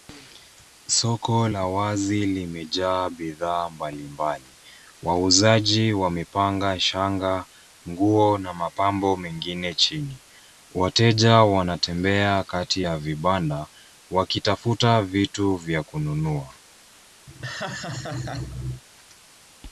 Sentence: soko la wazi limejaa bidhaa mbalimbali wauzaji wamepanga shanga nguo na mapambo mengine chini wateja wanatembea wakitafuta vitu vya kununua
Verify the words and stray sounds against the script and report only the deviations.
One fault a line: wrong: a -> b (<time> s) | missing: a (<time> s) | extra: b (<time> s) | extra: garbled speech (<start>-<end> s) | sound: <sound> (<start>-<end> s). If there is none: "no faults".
extra: kati ya vibanda (12.4 s)
sound: laugh (17.3-18.8 s)